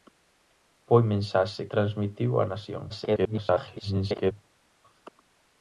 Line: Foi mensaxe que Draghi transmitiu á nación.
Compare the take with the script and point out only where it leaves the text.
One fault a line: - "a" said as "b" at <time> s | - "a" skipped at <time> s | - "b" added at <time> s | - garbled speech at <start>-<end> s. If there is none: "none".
- "que Draghi" skipped at 1.6 s
- garbled speech at 2.9-4.3 s